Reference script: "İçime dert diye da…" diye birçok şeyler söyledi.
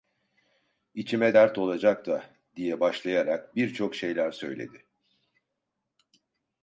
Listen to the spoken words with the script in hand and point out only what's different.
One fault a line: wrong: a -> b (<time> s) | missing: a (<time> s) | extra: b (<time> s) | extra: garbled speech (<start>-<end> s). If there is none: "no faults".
wrong: diye -> olacak (1.6 s)
extra: başlayarak (2.8 s)